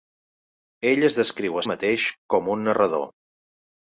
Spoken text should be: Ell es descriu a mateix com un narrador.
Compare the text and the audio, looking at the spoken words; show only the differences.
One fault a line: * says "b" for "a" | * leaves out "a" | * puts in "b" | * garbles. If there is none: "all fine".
all fine